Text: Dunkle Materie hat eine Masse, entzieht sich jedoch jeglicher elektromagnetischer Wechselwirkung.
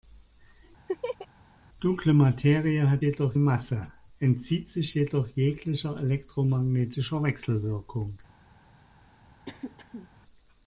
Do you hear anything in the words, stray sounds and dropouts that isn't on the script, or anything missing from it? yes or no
yes